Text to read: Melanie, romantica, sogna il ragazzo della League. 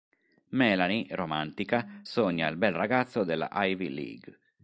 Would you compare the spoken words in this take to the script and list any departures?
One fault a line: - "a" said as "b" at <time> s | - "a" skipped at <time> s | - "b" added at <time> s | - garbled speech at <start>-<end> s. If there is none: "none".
- "bel" added at 2.6 s
- "Ivy" added at 3.5 s